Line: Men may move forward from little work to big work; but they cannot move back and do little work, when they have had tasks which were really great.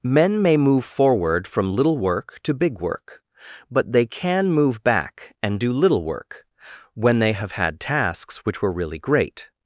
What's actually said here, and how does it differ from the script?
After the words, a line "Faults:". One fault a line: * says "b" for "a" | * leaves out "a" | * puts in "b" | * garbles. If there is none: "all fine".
Men may move forward from little work to big work; but they can move back and do little work, when they have had tasks which were really great.
Faults:
* says "can" for "cannot"